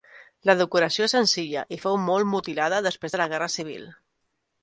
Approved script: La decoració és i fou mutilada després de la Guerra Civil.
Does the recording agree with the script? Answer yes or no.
no